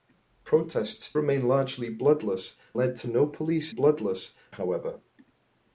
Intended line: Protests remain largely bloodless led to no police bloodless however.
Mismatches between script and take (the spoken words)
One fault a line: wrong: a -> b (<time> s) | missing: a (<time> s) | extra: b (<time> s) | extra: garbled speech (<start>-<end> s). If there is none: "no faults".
no faults